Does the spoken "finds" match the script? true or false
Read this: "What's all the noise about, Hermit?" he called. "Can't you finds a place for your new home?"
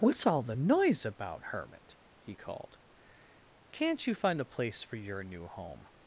false